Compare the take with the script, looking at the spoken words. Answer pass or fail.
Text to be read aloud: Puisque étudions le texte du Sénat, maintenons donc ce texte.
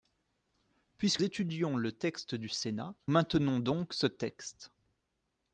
pass